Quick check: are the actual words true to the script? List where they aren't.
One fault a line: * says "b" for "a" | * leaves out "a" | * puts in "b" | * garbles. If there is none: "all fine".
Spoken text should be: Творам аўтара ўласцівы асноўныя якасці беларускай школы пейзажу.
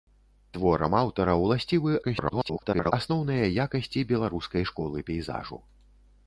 * garbles